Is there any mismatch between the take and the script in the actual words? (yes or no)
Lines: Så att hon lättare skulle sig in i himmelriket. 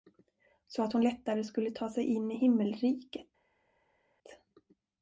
yes